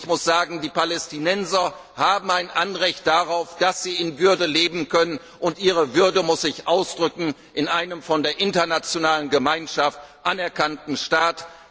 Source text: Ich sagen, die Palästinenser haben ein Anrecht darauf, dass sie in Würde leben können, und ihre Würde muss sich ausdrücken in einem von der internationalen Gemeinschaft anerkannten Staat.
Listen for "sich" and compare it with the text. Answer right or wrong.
right